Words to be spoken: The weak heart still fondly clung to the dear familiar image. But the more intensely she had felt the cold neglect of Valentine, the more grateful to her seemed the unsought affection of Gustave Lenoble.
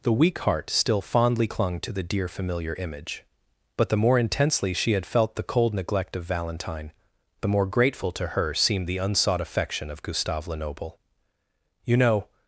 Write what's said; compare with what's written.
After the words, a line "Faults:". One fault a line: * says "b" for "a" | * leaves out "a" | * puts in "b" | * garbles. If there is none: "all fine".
The weak heart still fondly clung to the dear familiar image. But the more intensely she had felt the cold neglect of Valentine, the more grateful to her seemed the unsought affection of Gustave Lenoble. "You know
Faults:
* puts in "You know"